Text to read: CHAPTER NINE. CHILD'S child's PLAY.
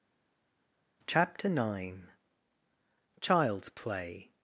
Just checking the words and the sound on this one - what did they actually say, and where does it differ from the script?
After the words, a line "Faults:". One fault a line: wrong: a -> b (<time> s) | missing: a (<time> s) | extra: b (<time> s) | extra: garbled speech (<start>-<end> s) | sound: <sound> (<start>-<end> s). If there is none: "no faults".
CHAPTER NINE. CHILD'S PLAY.
Faults:
missing: child's (3.7 s)